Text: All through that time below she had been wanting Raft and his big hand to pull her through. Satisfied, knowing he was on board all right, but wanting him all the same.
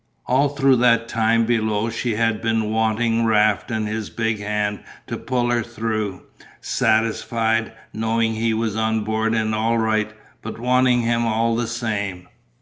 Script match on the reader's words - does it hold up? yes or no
no